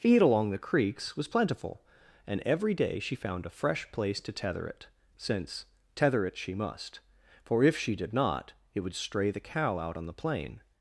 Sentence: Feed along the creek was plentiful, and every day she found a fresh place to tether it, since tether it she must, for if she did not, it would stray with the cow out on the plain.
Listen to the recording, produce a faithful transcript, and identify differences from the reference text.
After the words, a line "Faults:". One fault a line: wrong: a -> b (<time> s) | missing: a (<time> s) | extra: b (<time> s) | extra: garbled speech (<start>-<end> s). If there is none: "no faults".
Feed along the creeks was plentiful, and every day she found a fresh place to tether it, since tether it she must, for if she did not, it would stray the cow out on the plain.
Faults:
wrong: creek -> creeks (0.6 s)
missing: with (9.3 s)